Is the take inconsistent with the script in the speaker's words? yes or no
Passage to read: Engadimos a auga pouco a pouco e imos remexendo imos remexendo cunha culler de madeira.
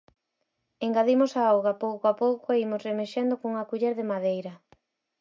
yes